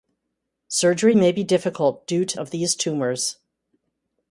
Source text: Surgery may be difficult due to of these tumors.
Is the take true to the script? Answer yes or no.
yes